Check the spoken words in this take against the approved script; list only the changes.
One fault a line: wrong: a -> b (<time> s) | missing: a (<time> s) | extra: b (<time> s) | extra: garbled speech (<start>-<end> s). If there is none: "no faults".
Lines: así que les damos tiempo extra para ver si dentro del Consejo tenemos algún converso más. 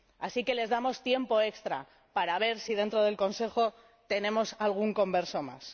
no faults